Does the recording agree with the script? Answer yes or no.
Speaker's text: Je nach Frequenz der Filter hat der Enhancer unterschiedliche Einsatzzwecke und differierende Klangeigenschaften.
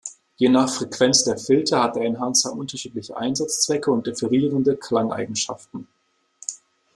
yes